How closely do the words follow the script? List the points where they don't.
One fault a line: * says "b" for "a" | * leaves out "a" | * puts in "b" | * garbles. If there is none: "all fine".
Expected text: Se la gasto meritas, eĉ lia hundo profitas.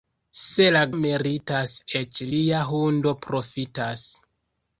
* leaves out "gasto"